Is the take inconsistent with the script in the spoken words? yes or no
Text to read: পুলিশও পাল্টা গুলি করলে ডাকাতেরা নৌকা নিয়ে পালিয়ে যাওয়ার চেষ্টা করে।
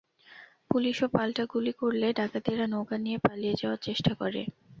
no